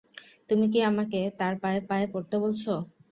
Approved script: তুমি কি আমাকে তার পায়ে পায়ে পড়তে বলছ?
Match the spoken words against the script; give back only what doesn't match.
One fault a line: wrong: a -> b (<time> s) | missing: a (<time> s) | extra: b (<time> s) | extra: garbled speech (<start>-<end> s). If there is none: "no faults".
no faults